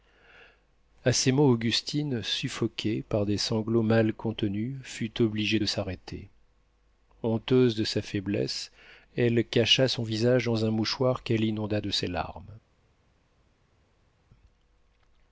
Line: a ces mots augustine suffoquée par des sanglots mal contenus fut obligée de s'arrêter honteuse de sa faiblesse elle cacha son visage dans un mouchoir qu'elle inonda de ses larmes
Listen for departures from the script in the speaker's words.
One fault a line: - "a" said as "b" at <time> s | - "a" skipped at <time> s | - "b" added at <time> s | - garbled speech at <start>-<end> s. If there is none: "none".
none